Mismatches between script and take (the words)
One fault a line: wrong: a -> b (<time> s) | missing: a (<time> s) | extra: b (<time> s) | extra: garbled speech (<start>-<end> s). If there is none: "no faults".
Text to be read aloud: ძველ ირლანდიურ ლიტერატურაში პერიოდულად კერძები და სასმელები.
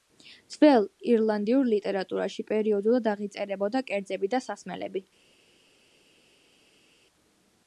extra: აღიწერებოდა (3.1 s)